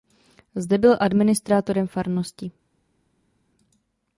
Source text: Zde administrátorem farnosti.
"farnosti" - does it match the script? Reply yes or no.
yes